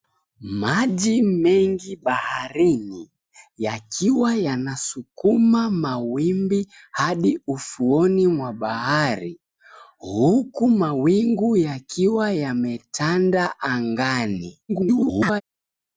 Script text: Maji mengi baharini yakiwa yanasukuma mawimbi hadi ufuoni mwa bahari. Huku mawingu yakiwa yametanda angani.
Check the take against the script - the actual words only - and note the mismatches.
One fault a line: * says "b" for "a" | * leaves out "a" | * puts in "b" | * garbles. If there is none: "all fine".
* garbles